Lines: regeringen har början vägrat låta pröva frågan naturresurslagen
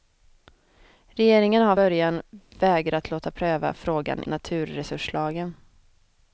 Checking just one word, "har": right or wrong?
right